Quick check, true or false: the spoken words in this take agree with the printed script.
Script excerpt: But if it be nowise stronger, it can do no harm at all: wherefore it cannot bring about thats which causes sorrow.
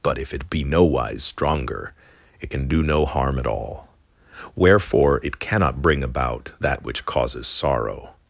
false